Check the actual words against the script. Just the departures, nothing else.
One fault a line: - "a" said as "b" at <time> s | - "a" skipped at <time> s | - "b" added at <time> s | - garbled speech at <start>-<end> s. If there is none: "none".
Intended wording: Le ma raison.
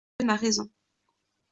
none